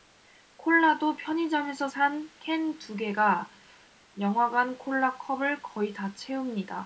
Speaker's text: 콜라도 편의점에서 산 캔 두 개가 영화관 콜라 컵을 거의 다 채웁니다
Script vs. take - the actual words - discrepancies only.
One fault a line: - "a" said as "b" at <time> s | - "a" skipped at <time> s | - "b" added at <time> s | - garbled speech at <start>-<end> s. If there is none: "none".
none